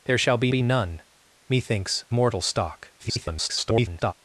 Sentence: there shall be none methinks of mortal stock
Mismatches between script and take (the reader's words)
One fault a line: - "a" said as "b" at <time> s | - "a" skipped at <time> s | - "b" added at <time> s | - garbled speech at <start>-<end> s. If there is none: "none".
- "be" added at 0.5 s
- "of" skipped at 2.0 s
- garbled speech at 3.0-4.1 s